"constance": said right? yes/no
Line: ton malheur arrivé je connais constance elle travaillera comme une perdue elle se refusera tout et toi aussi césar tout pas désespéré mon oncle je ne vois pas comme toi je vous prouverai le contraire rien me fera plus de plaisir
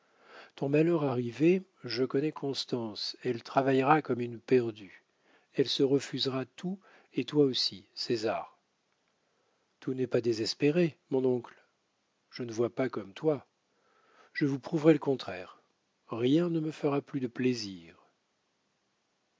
yes